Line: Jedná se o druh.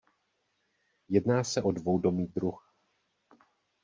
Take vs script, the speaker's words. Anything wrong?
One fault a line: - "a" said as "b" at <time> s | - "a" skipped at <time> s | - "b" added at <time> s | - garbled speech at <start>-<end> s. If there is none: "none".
- "dvoudomý" added at 1.7 s